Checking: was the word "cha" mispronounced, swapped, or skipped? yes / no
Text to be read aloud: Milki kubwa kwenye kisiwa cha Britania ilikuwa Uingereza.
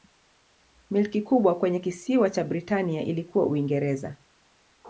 no